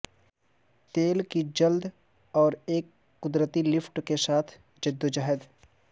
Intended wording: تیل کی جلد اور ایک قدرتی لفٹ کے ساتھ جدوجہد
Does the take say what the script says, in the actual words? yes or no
yes